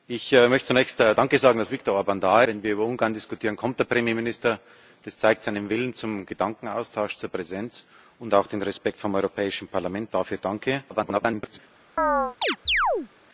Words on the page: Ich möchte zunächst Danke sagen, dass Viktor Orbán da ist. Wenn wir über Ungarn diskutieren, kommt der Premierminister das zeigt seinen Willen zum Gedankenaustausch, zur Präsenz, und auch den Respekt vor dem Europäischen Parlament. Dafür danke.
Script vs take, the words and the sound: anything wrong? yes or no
yes